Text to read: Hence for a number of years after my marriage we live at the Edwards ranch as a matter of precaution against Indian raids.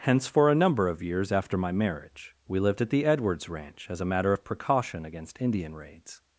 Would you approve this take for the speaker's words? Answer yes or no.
no